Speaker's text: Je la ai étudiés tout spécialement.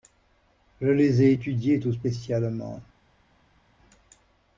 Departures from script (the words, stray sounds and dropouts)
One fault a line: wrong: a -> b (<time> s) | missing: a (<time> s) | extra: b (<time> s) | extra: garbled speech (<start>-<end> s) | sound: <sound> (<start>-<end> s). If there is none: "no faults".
wrong: la -> les (0.9 s)